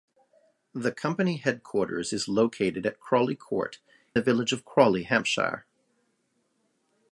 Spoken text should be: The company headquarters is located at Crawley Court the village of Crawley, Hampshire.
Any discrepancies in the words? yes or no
no